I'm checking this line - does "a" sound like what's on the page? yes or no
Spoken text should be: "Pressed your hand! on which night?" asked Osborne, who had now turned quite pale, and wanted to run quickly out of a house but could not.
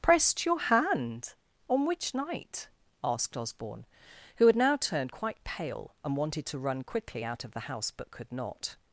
no